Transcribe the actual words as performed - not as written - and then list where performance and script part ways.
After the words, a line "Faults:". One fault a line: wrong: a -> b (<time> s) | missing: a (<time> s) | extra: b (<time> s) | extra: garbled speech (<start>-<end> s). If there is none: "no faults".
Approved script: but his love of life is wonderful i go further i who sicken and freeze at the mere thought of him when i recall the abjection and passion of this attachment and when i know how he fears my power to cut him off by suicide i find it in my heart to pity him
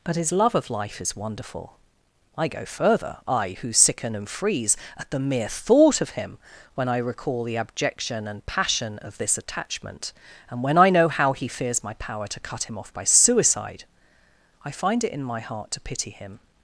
but his love of life is wonderful i go further i who sicken and freeze at the mere thought of him when i recall the abjection and passion of this attachment and when i know how he fears my power to cut him off by suicide i find it in my heart to pity him
Faults:
no faults